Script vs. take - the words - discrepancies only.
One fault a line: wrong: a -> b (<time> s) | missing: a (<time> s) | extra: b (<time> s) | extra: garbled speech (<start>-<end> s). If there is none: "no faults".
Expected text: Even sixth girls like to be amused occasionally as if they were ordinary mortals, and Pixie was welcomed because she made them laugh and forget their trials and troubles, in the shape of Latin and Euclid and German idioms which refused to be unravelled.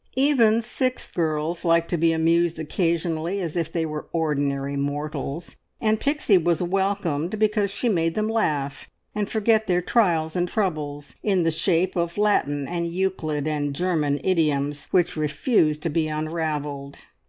no faults